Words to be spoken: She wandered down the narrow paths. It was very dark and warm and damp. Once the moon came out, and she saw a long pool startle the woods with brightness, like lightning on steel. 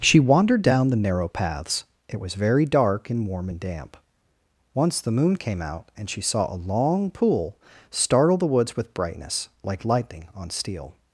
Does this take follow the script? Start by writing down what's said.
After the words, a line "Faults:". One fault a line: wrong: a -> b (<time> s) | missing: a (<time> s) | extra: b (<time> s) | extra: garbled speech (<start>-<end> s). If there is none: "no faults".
She wandered down the narrow paths. It was very dark and warm and damp. Once the moon came out, and she saw a long pool startle the woods with brightness, like lightning on steel.
Faults:
no faults